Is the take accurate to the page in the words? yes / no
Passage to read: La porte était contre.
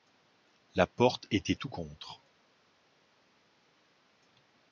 no